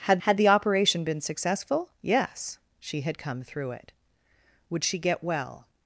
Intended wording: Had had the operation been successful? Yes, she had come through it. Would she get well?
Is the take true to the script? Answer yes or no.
yes